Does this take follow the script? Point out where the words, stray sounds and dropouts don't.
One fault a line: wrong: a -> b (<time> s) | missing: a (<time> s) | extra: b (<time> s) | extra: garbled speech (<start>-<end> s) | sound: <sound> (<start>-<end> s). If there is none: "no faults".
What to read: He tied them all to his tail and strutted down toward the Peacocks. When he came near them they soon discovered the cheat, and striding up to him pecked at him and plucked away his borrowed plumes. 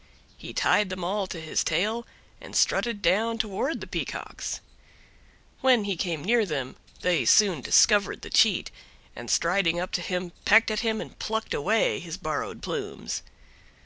no faults